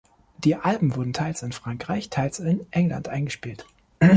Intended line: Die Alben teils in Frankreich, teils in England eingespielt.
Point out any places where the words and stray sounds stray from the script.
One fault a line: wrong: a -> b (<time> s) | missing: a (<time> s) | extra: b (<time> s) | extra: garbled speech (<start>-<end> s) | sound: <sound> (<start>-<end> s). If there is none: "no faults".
extra: wurden (0.9 s)